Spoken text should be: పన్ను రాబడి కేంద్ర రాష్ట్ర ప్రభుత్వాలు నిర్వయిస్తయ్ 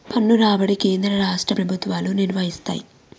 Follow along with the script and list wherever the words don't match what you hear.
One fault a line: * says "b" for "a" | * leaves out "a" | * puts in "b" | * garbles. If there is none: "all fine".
all fine